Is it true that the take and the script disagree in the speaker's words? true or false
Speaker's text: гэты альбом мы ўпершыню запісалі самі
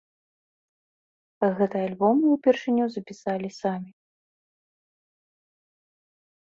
false